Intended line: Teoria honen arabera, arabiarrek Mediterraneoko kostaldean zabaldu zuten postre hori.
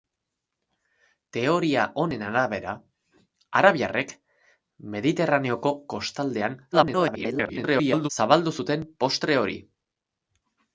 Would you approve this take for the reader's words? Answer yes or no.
no